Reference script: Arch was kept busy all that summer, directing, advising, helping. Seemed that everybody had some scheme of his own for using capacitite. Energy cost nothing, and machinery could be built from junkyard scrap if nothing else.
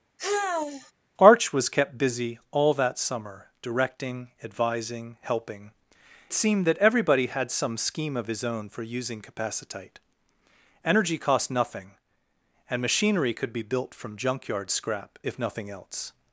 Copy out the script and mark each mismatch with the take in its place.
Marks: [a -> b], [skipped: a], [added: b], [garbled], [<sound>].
[sigh] Arch was kept busy all that summer, directing, advising, helping. Seemed that everybody had some scheme of his own for using capacitite. Energy cost nothing, and machinery could be built from junkyard scrap if nothing else.